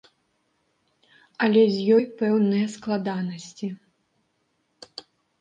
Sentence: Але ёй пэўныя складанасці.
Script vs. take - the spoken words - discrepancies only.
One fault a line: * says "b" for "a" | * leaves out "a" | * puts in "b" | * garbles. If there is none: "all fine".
* puts in "з"